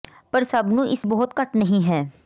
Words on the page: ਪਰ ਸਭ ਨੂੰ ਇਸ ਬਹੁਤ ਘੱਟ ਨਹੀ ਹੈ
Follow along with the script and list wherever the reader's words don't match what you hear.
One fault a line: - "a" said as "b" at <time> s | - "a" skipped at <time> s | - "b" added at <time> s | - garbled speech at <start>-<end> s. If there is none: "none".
none